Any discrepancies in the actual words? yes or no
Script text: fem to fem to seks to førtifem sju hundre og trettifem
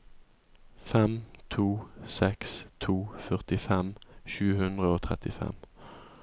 yes